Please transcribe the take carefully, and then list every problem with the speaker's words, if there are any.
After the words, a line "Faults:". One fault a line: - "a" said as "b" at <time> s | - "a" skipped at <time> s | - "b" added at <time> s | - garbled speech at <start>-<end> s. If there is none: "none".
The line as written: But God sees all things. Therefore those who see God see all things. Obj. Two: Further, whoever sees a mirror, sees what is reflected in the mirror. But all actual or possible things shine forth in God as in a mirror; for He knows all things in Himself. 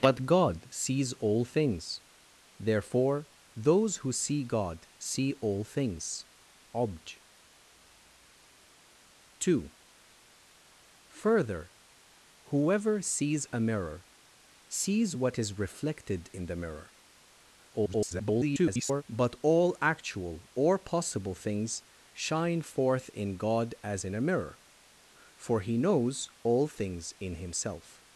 But God sees all things. Therefore those who see God see all things. Obj. Two: Further, whoever sees a mirror, sees what is reflected in the mirror. [garbled] But all actual or possible things shine forth in God as in a mirror; for He knows all things in Himself.
Faults:
- garbled speech at 17.7-19.0 s